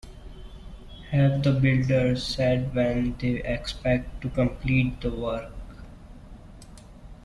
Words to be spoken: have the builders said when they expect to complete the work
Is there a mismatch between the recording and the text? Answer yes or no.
no